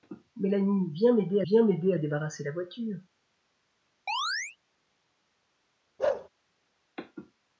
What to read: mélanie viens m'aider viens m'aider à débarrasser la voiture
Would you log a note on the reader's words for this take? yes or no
no